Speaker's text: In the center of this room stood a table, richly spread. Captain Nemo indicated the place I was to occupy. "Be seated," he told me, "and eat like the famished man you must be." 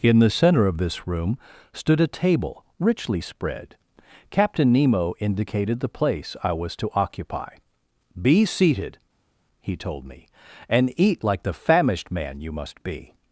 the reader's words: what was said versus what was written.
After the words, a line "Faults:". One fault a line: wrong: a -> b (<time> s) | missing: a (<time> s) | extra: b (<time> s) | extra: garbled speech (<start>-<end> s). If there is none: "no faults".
In the center of this room stood a table, richly spread. Captain Nemo indicated the place I was to occupy. "Be seated," he told me, "and eat like the famished man you must be."
Faults:
no faults